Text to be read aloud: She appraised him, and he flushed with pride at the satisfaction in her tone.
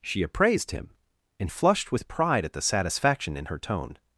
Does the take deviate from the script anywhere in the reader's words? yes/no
yes